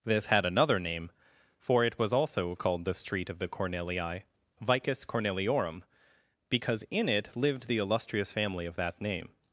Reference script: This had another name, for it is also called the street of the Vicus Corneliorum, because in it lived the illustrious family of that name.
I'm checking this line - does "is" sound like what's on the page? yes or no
no